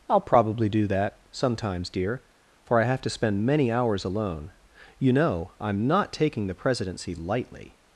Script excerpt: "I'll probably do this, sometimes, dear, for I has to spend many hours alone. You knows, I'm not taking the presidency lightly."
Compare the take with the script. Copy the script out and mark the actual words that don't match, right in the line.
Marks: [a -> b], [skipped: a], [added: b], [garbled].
"I'll probably do [this, -> that] sometimes, dear, for I [has -> have] to spend many hours alone. You [knows, -> know] I'm not taking the presidency lightly."